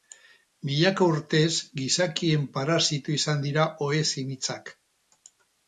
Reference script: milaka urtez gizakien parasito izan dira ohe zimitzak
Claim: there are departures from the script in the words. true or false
false